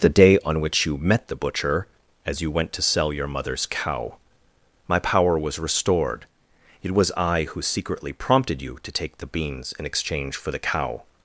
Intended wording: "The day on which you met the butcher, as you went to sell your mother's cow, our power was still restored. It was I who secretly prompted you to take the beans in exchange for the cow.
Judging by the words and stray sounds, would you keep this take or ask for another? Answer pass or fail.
fail